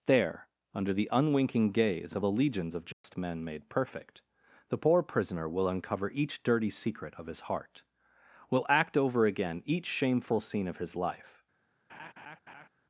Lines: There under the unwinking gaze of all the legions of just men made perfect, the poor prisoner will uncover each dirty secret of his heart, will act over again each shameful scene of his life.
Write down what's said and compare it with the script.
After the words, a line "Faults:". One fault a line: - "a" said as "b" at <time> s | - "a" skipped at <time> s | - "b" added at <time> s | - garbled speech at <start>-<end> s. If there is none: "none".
There under the unwinking gaze of the legions of just men made perfect, the poor prisoner will uncover each dirty secret of his heart, will act over again each shameful scene of his life.
Faults:
- "all" skipped at 2.2 s